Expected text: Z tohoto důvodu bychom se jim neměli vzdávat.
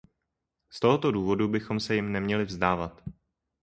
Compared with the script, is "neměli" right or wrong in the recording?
right